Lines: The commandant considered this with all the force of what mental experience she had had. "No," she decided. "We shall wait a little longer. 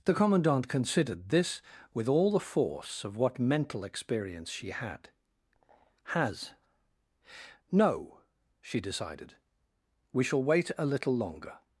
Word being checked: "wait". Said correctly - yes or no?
yes